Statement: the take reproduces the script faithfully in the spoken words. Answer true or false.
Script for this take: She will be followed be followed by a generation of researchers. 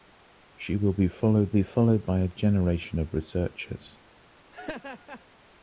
true